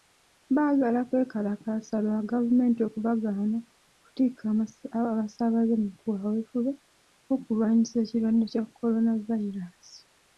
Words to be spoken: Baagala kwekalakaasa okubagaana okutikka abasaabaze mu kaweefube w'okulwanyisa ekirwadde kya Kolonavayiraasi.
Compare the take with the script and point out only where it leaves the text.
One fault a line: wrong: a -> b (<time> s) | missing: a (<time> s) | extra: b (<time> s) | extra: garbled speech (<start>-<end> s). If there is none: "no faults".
extra: lwa gavumenti (2.0 s)